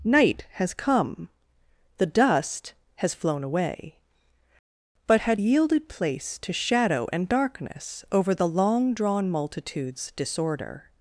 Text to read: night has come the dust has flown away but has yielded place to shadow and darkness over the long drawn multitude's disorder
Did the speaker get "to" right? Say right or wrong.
right